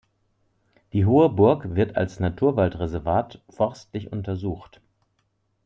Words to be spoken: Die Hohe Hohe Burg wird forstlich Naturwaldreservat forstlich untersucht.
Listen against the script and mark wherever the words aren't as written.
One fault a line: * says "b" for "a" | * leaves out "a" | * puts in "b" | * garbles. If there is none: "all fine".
* leaves out "Hohe"
* says "als" for "forstlich"